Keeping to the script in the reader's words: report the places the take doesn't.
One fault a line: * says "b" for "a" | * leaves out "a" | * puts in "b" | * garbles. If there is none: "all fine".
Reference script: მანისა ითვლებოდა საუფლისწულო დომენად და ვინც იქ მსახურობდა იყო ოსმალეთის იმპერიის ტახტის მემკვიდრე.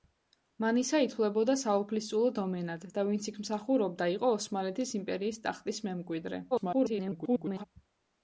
* garbles